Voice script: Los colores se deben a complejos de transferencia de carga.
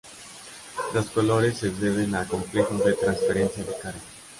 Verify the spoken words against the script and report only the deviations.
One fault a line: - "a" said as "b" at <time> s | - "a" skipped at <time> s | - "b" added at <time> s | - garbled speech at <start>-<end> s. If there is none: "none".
none